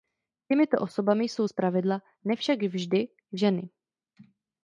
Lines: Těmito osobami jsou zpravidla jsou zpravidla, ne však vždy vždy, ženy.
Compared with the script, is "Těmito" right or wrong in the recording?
right